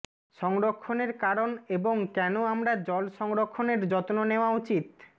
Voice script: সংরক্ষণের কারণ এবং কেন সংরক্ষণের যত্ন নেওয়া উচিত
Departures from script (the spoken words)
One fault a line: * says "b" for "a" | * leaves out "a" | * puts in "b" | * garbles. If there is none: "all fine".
* puts in "আমরা জল"